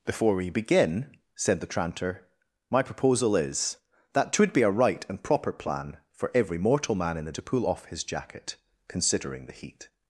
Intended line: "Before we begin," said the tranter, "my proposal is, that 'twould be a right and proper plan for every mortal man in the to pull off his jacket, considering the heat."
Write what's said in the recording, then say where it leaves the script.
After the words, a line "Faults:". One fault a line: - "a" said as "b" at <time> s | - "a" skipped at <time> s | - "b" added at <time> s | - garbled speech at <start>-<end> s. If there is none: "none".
"Before we begin," said the tranter, "my proposal is, that 'twould be a right and proper plan for every mortal man in the to pull off his jacket, considering the heat."
Faults:
none